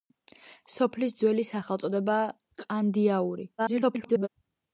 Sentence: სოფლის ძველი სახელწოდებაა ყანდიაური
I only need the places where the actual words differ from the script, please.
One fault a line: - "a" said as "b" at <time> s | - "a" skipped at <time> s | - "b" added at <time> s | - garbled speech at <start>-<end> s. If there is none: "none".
- garbled speech at 3.6-4.3 s